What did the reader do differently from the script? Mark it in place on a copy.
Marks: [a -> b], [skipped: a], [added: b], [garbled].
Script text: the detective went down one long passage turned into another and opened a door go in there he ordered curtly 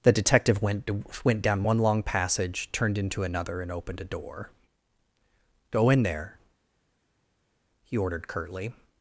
the detective went [added: went] down one long passage turned into another and opened a door go in there he ordered curtly